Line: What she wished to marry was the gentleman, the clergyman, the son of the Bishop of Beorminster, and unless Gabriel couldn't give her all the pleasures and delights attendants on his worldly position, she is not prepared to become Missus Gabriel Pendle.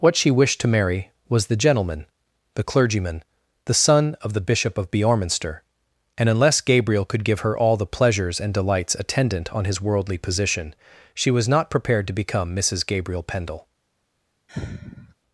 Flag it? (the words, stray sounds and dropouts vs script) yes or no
yes